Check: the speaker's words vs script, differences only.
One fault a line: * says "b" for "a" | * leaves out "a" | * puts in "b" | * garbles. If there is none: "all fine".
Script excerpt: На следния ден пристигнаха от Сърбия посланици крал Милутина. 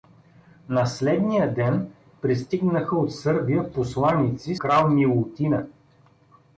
all fine